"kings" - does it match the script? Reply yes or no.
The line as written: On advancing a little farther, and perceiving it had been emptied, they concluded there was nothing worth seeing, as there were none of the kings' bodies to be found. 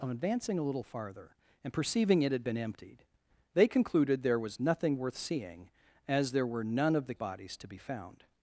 no